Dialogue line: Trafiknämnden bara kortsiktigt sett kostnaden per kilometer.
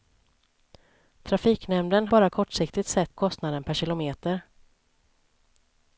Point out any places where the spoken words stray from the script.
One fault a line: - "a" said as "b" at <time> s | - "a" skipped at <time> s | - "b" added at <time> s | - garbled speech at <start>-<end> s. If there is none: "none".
none